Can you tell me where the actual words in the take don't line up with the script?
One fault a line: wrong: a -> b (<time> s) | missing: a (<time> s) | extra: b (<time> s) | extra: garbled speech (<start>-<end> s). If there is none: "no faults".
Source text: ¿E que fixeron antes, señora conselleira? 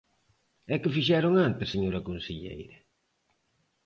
no faults